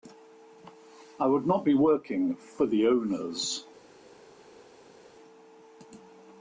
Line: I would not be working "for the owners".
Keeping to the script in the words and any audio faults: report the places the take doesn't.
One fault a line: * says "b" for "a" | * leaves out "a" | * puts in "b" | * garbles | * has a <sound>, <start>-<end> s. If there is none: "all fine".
all fine